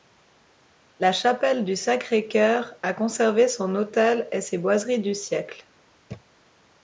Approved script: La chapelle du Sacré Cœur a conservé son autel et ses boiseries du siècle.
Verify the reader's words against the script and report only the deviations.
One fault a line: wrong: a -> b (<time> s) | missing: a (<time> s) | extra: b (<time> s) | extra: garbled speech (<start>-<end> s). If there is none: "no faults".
no faults